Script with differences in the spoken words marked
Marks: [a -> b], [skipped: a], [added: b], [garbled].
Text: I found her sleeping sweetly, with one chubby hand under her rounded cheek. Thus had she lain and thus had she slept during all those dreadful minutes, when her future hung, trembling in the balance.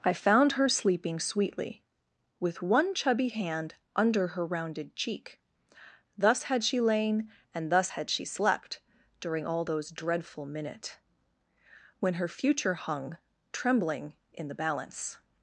I found her sleeping sweetly, with one chubby hand under her rounded cheek. Thus had she lain and thus had she slept during all those dreadful [minutes, -> minute] when her future hung, trembling in the balance.